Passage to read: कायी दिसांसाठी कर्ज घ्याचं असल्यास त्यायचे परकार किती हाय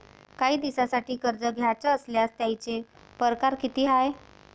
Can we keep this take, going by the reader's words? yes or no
yes